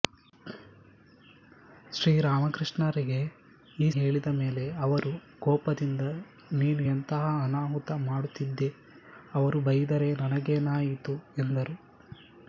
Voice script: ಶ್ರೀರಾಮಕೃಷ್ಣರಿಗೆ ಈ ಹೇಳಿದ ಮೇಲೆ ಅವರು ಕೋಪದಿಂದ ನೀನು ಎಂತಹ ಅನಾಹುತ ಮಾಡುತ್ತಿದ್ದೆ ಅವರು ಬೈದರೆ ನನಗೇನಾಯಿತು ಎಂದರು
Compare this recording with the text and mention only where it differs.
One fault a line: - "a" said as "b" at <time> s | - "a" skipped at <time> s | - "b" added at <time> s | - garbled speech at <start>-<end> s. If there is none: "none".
none